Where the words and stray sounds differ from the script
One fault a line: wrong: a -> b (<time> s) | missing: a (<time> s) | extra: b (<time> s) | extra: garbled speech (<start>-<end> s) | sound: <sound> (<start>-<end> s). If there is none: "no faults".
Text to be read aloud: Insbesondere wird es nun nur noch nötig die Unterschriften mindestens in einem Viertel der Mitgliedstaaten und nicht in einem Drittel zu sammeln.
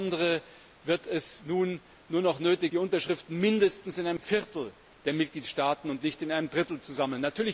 no faults